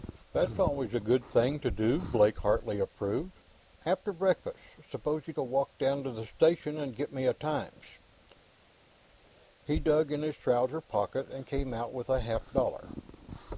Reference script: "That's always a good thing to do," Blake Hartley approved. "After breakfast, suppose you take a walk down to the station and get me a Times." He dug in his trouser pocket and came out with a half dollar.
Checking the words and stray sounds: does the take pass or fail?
fail